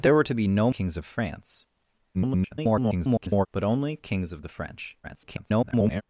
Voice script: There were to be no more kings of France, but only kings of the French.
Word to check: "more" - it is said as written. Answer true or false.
false